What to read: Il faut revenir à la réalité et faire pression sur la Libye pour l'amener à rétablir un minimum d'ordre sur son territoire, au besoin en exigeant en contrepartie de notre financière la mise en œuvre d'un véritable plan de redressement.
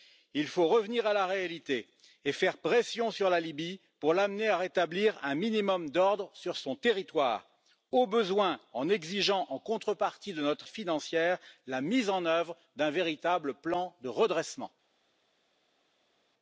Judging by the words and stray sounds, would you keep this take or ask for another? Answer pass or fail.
pass